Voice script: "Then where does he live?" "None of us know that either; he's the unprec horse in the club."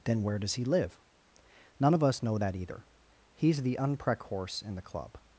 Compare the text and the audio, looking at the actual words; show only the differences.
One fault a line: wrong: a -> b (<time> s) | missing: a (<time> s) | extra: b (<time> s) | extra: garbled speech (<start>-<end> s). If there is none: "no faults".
no faults